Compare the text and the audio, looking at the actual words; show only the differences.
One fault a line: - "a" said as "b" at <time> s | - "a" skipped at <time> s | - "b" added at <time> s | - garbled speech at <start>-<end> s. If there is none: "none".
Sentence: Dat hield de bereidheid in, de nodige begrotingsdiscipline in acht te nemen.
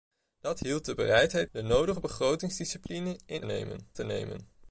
- "in" skipped at 1.5 s
- "acht" said as "nemen" at 3.4 s